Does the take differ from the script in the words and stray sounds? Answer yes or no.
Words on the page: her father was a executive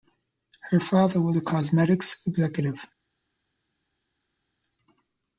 yes